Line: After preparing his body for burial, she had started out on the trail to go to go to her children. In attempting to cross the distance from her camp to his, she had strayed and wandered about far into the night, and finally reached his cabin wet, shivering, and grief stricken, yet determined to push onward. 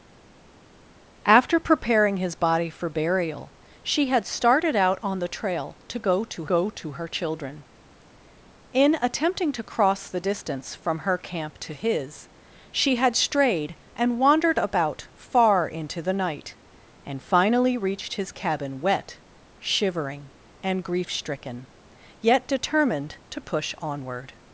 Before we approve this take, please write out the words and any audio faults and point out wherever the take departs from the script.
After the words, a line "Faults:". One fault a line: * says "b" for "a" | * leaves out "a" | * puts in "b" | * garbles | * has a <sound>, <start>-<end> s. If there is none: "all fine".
After preparing his body for burial, she had started out on the trail to go to go to her children. In attempting to cross the distance from her camp to his, she had strayed and wandered about far into the night, and finally reached his cabin wet, shivering, and grief stricken, yet determined to push onward.
Faults:
all fine